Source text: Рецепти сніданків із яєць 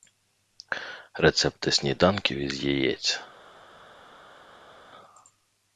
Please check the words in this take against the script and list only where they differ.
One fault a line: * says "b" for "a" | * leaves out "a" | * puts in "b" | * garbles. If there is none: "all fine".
all fine